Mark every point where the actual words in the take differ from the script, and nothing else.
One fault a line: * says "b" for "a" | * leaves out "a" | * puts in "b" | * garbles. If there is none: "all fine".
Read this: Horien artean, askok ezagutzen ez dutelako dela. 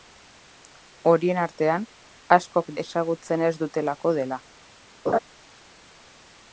all fine